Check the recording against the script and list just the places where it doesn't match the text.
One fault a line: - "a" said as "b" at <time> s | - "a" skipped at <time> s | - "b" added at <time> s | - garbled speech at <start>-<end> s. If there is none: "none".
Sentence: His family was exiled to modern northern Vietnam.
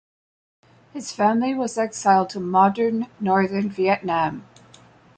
none